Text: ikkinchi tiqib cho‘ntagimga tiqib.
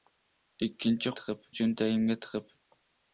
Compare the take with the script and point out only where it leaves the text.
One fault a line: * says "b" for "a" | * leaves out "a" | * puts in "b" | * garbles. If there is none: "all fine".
all fine